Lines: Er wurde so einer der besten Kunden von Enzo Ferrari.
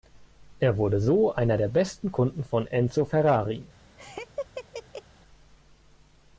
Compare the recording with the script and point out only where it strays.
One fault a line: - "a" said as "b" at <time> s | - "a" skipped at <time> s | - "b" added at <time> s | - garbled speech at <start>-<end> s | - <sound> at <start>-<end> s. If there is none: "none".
- laugh at 4.0-5.0 s